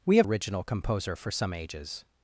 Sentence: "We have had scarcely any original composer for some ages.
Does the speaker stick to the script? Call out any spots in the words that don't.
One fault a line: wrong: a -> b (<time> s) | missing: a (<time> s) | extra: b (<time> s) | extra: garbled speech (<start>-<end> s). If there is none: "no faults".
missing: had scarcely any (0.3 s)